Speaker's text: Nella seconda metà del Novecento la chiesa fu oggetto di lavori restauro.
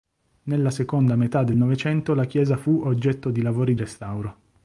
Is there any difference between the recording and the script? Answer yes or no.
no